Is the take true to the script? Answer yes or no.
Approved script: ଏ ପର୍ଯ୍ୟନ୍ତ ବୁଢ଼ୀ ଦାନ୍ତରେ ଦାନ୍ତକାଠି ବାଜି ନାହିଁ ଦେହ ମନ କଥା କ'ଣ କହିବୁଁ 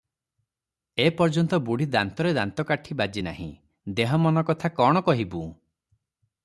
yes